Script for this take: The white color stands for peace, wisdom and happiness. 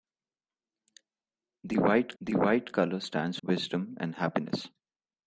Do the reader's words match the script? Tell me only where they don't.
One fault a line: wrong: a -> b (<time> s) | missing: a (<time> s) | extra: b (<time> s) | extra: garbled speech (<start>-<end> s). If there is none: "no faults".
extra: the white (2.2 s)
missing: for peace (3.4 s)